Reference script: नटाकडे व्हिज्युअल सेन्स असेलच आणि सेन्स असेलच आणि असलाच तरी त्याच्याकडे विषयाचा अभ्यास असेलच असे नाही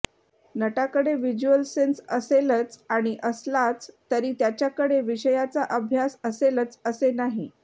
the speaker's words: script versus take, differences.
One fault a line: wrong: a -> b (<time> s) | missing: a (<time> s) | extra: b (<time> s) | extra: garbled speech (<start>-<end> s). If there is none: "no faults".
missing: सेन्स असेलच आणि (3.1 s)